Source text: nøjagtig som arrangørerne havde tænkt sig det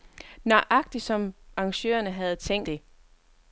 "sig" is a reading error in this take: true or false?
true